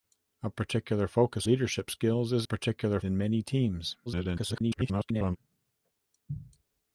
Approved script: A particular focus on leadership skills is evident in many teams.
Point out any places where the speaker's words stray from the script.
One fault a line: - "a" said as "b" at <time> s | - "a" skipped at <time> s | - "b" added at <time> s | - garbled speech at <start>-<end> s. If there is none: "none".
- "on" skipped at 1.5 s
- "evident" said as "particular" at 2.4 s
- garbled speech at 4.1-5.4 s